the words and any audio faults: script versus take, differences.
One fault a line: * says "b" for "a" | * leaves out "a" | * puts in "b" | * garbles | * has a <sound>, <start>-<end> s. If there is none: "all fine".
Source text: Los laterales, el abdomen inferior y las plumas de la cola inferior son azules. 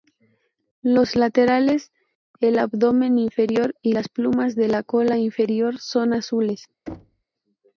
* has a thud, 6.9-7.2 s